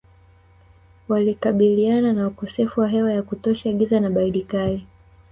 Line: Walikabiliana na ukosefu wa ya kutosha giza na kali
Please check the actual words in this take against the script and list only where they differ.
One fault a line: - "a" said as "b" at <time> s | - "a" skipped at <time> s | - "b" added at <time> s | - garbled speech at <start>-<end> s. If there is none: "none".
- "hewa" added at 2.9 s
- "baridi" added at 4.1 s